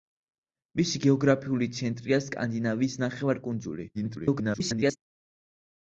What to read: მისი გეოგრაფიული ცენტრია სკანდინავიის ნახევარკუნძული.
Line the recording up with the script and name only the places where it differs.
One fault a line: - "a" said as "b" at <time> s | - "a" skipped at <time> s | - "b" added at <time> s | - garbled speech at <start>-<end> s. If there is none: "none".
- garbled speech at 3.9-5.0 s